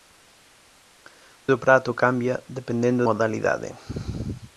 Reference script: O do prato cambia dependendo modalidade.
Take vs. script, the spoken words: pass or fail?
pass